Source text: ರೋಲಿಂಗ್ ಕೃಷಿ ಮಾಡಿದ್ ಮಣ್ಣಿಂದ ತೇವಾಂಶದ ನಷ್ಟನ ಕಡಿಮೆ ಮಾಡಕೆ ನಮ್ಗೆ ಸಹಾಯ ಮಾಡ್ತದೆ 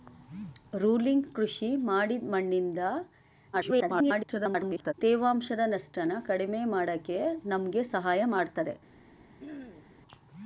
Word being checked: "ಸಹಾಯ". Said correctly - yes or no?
yes